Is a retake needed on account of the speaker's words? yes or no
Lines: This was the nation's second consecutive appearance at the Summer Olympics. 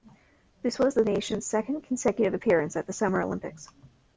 no